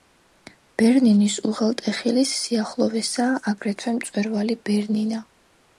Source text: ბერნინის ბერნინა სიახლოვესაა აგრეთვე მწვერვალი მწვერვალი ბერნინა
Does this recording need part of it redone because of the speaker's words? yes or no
yes